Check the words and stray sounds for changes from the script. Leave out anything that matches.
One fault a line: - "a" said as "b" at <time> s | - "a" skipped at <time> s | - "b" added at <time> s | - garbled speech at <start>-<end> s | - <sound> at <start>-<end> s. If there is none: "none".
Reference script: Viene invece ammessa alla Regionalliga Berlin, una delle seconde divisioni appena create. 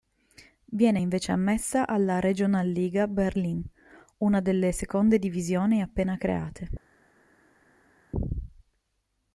none